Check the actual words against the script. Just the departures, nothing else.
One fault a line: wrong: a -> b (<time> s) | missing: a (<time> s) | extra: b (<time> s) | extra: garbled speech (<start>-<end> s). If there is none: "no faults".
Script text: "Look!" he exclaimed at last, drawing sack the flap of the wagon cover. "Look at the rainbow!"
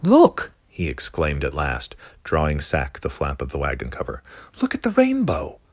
no faults